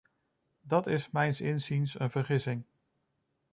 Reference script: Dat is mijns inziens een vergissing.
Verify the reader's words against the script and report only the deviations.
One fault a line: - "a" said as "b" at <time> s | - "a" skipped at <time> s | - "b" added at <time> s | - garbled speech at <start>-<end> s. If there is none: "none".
none